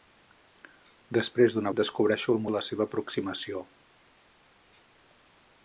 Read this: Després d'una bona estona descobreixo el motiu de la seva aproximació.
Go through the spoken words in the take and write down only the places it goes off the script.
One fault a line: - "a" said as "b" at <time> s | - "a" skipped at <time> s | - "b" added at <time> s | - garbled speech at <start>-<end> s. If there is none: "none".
- "bona estona" skipped at 1.7 s
- "motiu" skipped at 2.4 s